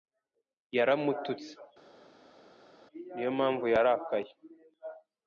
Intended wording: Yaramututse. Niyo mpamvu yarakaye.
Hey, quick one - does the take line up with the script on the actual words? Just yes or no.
yes